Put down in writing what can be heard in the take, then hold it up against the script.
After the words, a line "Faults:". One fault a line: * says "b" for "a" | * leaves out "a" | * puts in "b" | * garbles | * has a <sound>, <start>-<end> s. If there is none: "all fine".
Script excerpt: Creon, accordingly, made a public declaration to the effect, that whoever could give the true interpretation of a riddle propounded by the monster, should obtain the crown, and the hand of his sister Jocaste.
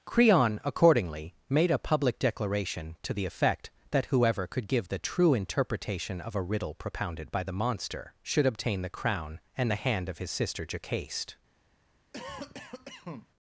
Creon, accordingly, made a public declaration to the effect, that whoever could give the true interpretation of a riddle propounded by the monster, should obtain the crown, and the hand of his sister Jocaste.
Faults:
* has a cough, 12.1-13.3 s